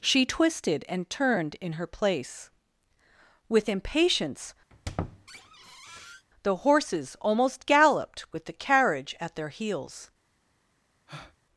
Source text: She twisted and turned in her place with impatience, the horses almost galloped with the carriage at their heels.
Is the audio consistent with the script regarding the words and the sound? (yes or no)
no